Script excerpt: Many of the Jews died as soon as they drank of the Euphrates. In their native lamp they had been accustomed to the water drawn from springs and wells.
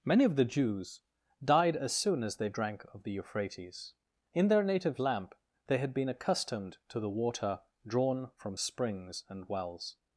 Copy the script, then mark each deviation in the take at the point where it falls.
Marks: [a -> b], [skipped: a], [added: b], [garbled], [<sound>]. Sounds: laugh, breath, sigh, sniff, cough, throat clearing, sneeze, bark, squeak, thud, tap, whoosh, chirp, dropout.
Many of the Jews died as soon as they drank of the Euphrates. In their native lamp they had been accustomed to the water drawn from springs and wells.